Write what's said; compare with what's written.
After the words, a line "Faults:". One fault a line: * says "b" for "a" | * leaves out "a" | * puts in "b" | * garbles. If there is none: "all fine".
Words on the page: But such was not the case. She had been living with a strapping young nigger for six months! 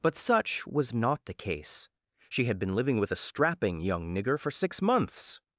But such was not the case. She had been living with a strapping young nigger for six months!
Faults:
all fine